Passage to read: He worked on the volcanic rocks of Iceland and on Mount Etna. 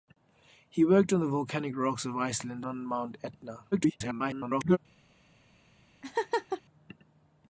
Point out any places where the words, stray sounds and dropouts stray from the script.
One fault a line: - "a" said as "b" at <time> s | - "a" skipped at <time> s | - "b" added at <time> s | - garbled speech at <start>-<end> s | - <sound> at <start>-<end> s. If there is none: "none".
- "and" skipped at 2.6 s
- garbled speech at 3.7-4.8 s
- laugh at 6.0-6.6 s